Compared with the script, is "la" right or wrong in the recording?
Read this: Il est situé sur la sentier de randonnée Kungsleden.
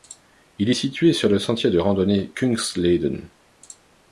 wrong